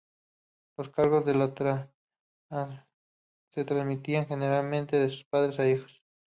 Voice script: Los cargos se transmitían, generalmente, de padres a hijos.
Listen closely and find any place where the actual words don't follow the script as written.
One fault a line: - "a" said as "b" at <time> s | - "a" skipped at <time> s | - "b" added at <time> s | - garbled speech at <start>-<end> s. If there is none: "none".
none